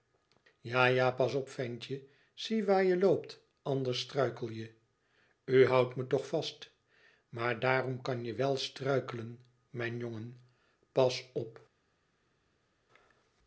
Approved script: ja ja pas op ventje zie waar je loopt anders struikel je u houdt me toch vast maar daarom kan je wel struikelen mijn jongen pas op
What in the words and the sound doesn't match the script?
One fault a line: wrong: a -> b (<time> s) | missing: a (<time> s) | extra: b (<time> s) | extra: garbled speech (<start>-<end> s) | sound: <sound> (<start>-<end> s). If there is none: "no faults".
no faults